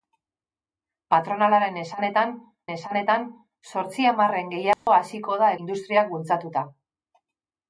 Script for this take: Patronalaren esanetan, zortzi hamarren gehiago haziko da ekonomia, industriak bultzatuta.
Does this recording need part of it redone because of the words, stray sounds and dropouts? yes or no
yes